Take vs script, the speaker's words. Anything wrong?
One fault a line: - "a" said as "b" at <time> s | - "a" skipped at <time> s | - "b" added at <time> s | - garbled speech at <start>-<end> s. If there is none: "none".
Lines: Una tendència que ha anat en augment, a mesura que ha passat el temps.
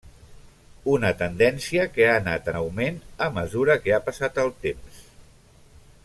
none